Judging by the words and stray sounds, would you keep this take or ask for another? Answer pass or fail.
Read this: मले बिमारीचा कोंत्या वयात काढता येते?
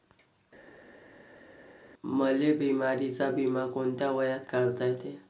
fail